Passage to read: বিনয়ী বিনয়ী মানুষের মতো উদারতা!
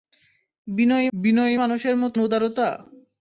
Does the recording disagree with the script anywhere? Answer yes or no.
no